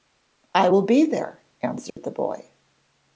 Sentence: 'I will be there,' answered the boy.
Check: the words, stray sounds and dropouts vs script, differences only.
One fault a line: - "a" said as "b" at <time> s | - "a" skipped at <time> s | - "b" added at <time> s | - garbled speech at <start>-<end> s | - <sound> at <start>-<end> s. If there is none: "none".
- dropout at 1.9-2.0 s